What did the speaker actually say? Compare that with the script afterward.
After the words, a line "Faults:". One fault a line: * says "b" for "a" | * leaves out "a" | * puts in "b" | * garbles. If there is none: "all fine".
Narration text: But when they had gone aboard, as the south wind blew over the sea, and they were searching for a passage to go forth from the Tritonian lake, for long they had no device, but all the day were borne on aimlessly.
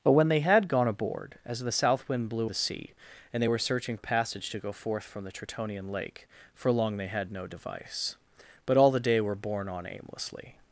But when they had gone aboard, as the south wind blew the sea, and they were searching a passage to go forth from the Tritonian lake, for long they had no device, but all the day were borne on aimlessly.
Faults:
* leaves out "over"
* leaves out "for"